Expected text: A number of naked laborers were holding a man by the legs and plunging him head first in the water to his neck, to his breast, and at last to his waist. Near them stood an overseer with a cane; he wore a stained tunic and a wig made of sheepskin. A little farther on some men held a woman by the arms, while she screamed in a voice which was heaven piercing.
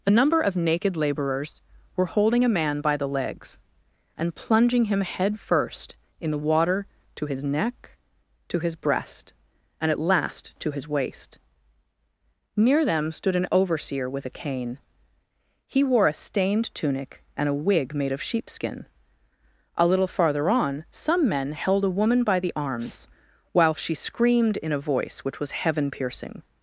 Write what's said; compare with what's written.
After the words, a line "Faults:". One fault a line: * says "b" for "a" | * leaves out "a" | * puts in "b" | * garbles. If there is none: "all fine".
A number of naked laborers were holding a man by the legs and plunging him head first in the water to his neck, to his breast, and at last to his waist. Near them stood an overseer with a cane; he wore a stained tunic and a wig made of sheepskin. A little farther on some men held a woman by the arms, while she screamed in a voice which was heaven piercing.
Faults:
all fine